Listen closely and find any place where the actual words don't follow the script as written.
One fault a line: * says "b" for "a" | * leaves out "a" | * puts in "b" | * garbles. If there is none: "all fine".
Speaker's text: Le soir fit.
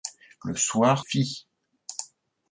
all fine